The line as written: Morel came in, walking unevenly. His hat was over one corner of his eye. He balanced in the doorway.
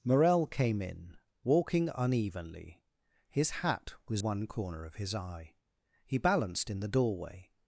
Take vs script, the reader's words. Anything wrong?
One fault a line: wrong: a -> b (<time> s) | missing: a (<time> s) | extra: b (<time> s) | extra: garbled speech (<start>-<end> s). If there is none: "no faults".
missing: over (4.2 s)